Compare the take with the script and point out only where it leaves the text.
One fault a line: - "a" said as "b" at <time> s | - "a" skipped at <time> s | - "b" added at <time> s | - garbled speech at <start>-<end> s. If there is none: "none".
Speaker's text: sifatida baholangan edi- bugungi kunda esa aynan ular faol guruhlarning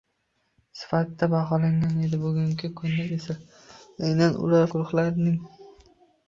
- "faol" skipped at 4.7 s